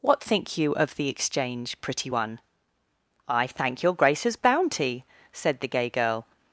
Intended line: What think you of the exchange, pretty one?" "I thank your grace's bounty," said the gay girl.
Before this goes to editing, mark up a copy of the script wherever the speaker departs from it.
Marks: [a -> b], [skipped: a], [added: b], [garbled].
What think you of the exchange, pretty one?" "I thank your grace's bounty," said the gay girl.